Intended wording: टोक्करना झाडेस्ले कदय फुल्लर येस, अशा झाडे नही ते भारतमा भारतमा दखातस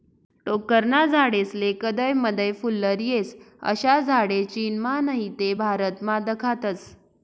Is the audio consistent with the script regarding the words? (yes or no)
no